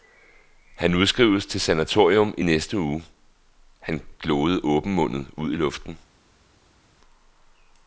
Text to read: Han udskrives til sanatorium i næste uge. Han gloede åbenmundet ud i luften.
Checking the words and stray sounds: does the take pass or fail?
pass